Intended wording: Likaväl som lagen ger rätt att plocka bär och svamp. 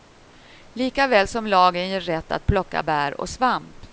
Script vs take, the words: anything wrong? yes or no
no